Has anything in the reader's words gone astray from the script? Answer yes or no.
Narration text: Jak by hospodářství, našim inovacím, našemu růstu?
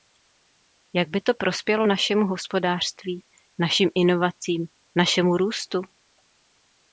yes